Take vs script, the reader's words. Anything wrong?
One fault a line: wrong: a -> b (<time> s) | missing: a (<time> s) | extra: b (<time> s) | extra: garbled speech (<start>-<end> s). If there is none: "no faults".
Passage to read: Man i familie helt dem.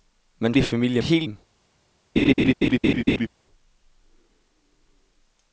no faults